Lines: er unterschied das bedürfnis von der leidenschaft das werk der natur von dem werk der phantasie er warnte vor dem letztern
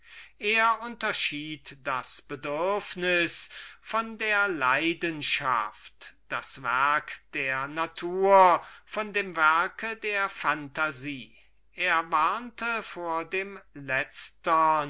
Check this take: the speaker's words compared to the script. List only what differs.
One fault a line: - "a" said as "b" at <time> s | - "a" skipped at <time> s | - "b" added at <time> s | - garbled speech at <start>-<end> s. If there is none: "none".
none